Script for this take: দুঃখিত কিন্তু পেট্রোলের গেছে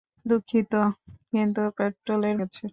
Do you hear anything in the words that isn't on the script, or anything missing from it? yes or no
no